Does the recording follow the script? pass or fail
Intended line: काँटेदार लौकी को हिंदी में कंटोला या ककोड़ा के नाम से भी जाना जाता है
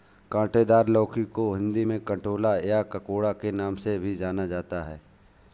pass